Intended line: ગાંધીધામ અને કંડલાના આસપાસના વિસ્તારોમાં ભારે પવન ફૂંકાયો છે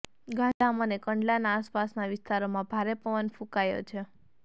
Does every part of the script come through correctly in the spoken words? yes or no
yes